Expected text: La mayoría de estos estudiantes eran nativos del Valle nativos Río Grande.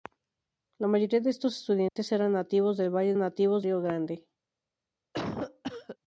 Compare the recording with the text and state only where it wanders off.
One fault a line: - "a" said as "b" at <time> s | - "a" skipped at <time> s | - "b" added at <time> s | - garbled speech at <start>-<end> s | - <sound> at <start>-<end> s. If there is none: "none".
- dropout at 1.9-2.0 s
- cough at 5.1-6.0 s